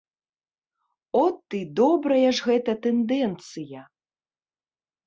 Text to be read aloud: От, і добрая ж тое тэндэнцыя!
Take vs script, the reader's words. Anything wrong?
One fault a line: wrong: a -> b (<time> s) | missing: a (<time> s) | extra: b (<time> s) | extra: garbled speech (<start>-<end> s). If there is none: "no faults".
wrong: тое -> гэта (2.5 s)